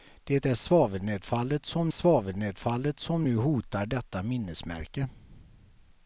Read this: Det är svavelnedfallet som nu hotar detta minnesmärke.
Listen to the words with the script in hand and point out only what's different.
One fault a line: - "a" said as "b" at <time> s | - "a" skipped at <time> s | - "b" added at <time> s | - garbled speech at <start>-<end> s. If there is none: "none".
- "svavelnedfallet som" added at 1.9 s